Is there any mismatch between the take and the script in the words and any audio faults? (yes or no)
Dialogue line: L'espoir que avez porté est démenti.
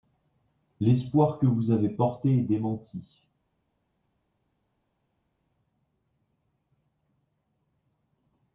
yes